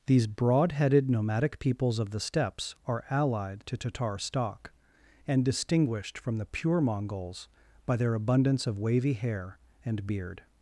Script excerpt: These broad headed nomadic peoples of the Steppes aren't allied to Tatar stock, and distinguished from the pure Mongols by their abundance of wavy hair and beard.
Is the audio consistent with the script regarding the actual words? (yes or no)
no